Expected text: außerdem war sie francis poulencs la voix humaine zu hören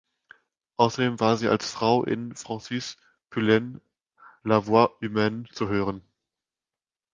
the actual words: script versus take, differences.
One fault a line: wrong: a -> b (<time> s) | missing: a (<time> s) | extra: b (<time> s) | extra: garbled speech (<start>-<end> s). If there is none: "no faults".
extra: als frau in (1.5 s)